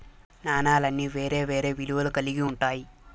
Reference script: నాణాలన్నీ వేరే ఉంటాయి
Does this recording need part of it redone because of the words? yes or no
yes